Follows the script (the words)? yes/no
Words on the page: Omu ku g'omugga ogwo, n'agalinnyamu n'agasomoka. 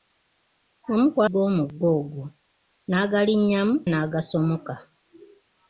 yes